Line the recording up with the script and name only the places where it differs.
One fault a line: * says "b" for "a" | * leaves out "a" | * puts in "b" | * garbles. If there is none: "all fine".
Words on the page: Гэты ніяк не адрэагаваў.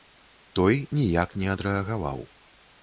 * says "Той" for "Гэты"